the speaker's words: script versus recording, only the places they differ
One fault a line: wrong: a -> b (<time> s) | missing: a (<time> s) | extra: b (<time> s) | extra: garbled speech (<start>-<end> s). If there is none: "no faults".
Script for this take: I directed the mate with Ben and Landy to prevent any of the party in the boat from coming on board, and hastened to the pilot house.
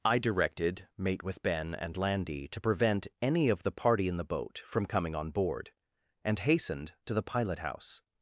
missing: the (0.9 s)